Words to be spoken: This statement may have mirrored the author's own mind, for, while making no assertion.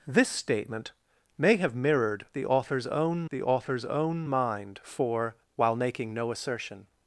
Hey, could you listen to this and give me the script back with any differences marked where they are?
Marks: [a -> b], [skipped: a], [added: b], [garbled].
This statement may have mirrored the author's own [added: the author's own] mind, for, while making no assertion.